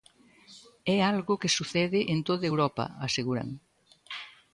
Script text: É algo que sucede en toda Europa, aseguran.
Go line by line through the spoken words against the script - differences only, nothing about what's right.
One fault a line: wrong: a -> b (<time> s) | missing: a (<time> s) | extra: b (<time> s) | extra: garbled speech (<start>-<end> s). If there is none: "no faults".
no faults